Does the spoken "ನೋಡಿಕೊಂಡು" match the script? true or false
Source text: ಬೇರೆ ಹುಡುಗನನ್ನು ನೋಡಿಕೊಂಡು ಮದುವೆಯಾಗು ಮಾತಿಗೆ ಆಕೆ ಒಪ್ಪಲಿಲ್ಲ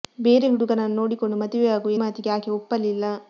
true